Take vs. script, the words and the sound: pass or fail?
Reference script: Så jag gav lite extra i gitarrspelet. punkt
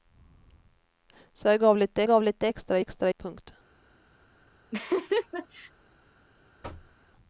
fail